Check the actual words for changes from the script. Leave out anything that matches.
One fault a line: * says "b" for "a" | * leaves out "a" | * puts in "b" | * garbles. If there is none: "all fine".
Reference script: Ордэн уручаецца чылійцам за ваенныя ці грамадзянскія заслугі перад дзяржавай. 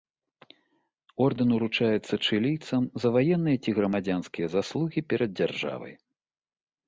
all fine